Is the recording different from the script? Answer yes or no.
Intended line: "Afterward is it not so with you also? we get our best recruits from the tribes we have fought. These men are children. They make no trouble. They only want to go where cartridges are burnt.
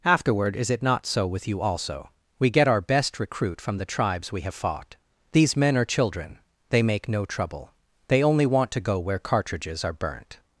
yes